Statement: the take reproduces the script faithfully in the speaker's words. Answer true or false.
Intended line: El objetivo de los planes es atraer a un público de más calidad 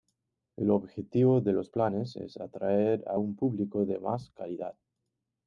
true